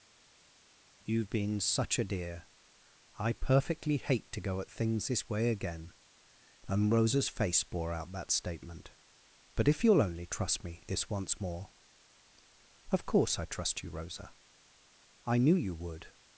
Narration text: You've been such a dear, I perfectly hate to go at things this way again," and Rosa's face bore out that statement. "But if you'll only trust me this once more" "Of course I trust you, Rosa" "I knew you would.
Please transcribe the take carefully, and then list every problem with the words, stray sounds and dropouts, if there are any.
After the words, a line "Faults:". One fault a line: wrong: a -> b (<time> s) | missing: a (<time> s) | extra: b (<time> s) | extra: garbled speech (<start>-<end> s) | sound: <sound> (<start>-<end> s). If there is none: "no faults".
You've been such a dear, I perfectly hate to go at things this way again," and Rosa's face bore out that statement. "But if you'll only trust me this once more" "Of course I trust you, Rosa" "I knew you would.
Faults:
no faults